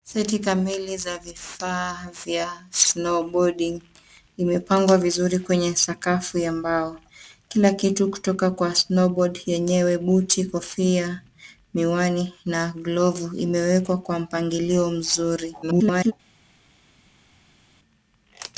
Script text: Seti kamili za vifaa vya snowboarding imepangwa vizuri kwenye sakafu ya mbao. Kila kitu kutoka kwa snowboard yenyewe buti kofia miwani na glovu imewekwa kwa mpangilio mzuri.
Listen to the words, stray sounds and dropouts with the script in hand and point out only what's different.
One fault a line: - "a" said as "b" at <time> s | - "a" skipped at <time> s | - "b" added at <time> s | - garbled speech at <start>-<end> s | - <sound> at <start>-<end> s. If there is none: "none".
- garbled speech at 15.6-16.1 s